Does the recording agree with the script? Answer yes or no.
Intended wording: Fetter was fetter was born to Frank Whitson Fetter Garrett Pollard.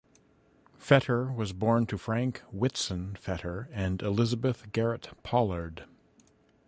no